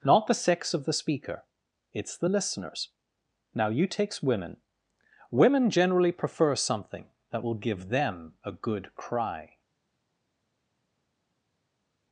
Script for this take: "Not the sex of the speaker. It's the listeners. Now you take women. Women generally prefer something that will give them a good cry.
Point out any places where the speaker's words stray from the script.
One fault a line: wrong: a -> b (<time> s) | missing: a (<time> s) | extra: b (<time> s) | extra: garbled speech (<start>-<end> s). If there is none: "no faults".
wrong: take -> takes (3.9 s)